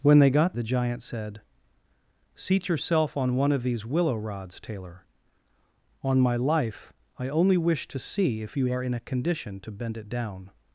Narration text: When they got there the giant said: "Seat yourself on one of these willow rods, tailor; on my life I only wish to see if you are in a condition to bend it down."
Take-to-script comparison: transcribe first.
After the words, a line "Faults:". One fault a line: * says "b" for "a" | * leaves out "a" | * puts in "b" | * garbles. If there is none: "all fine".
When they got the giant said: "Seat yourself on one of these willow rods, tailor; on my life I only wish to see if you are in a condition to bend it down."
Faults:
* leaves out "there"